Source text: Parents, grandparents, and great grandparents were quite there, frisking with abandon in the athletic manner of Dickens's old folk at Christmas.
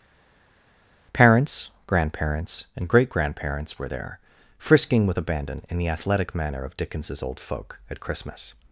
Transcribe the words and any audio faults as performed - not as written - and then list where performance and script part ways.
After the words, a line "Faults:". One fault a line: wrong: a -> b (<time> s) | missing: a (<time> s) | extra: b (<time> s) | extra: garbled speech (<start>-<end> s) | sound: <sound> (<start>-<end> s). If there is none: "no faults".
Parents, grandparents, and great grandparents were there, frisking with abandon in the athletic manner of Dickens's old folk at Christmas.
Faults:
missing: quite (3.9 s)